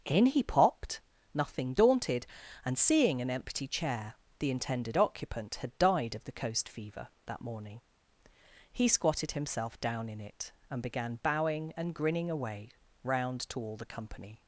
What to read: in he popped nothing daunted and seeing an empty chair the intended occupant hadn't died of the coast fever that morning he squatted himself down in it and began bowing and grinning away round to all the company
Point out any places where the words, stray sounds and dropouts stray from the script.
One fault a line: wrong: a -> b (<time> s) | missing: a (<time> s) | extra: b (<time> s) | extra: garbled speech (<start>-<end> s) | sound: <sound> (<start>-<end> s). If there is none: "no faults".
wrong: hadn't -> had (5.6 s)